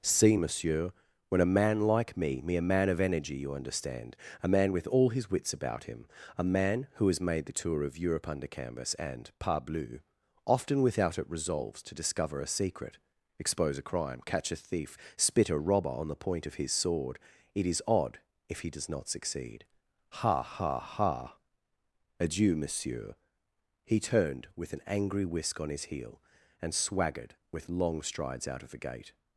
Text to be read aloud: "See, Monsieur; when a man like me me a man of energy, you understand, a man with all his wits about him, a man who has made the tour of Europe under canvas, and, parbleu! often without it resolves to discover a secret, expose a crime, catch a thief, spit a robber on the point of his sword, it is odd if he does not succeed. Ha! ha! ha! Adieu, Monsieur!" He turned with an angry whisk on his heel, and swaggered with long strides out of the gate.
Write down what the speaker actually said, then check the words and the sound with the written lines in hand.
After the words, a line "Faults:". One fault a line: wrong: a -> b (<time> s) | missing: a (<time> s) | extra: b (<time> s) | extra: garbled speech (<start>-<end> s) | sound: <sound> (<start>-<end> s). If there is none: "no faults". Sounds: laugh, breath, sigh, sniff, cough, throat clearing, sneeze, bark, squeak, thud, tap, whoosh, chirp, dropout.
"See, Monsieur; when a man like me me a man of energy, you understand, a man with all his wits about him, a man who has made the tour of Europe under canvas, and, parbleu! often without it resolves to discover a secret, expose a crime, catch a thief, spit a robber on the point of his sword, it is odd if he does not succeed. Ha! ha! ha! Adieu, Monsieur!" He turned with an angry whisk on his heel, and swaggered with long strides out of the gate.
Faults:
no faults